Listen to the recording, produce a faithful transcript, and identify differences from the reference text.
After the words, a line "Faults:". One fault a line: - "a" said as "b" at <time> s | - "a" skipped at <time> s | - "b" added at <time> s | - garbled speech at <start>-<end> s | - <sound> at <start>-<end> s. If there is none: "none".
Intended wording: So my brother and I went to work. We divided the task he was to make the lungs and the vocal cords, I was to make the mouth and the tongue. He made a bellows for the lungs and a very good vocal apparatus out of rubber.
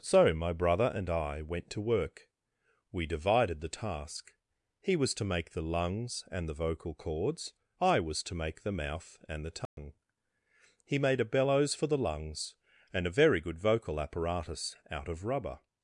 So my brother and I went to work. We divided the task he was to make the lungs and the vocal cords, I was to make the mouth and the tongue. He made a bellows for the lungs and a very good vocal apparatus out of rubber.
Faults:
- dropout at 9.7-9.8 s